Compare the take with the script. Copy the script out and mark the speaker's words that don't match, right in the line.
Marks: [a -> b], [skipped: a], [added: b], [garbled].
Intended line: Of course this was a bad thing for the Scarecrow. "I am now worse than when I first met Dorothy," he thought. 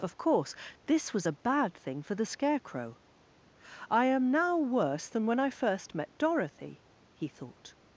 Of course this was a bad thing for the Scarecrow. "I am now worse than when I first met Dorothy," he thought.